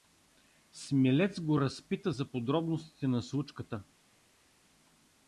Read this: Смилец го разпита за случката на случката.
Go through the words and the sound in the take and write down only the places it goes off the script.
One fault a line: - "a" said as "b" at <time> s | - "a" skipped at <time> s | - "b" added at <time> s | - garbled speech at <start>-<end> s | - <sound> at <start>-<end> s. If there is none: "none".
- "случката" said as "подробностите" at 2.2 s